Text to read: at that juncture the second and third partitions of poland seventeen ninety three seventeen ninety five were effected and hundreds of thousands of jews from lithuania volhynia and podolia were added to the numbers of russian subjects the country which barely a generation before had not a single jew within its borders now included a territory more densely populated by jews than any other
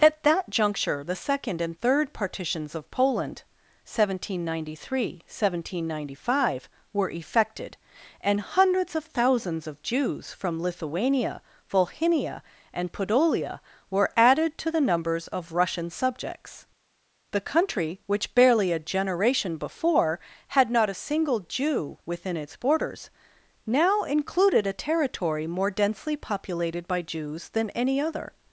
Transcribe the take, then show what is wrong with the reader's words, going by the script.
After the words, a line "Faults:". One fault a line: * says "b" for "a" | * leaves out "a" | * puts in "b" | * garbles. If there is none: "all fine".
at that juncture the second and third partitions of poland seventeen ninety three seventeen ninety five were effected and hundreds of thousands of jews from lithuania volhynia and podolia were added to the numbers of russian subjects the country which barely a generation before had not a single jew within its borders now included a territory more densely populated by jews than any other
Faults:
all fine